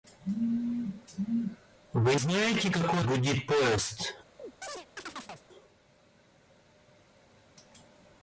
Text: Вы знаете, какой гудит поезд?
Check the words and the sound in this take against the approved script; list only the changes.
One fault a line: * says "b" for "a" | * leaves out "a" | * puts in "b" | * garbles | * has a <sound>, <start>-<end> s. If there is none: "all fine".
* has a chirp, 4.4-5.5 s